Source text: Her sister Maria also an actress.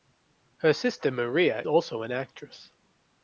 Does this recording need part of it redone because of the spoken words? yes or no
no